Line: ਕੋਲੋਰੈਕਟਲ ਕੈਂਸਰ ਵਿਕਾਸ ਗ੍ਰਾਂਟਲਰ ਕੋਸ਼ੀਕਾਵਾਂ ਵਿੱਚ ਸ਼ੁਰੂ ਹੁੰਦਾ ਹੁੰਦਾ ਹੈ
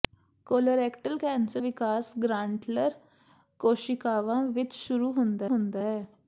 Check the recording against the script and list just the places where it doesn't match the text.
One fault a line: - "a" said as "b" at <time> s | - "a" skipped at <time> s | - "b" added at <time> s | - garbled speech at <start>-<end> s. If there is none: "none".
none